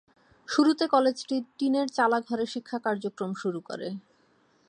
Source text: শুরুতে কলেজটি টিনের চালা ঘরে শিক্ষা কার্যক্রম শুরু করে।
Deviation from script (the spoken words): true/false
false